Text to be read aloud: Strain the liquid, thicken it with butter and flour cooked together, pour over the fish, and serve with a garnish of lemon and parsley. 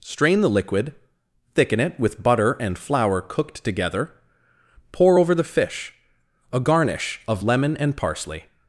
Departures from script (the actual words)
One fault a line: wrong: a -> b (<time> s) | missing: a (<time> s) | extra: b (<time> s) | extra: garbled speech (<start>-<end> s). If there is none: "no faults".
missing: and serve with (5.9 s)